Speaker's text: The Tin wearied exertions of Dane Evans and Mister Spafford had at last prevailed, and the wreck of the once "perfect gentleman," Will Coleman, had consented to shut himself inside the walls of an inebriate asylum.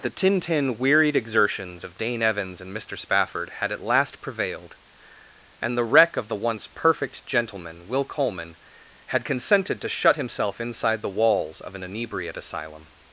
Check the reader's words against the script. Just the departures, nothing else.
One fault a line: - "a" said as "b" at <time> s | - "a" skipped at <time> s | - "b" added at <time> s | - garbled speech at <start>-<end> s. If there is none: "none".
- "Tin" added at 0.4 s